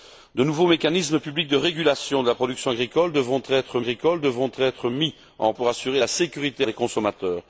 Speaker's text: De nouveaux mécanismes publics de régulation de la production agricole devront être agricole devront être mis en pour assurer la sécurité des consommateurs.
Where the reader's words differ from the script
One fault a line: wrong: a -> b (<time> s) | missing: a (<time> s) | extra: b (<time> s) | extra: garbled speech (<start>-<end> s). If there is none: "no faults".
no faults